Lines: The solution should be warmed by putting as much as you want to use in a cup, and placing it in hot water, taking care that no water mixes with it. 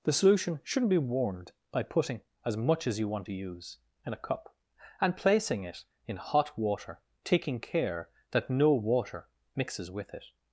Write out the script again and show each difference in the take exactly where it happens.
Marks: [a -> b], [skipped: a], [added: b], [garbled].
The solution [should -> shouldn't] be warmed by putting as much as you want to use in a cup, and placing it in hot water, taking care that no water mixes with it.